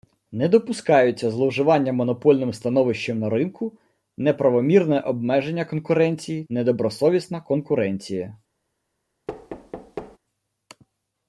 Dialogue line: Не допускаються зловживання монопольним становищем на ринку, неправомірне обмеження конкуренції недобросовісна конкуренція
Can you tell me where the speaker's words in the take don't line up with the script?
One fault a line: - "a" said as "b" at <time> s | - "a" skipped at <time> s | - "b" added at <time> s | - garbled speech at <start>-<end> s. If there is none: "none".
none